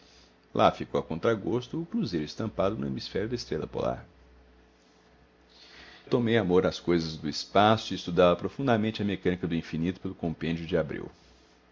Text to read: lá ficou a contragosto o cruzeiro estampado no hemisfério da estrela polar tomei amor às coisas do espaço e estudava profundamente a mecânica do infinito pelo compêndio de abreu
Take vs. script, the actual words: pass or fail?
pass